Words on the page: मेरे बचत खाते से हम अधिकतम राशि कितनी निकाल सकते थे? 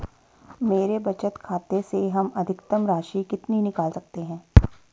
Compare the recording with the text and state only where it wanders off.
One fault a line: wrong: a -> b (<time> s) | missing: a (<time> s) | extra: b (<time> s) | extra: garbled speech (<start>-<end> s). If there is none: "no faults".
wrong: थे -> हैं (4.2 s)